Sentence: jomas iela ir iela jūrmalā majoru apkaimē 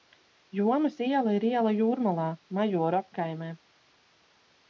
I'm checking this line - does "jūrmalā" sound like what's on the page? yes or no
yes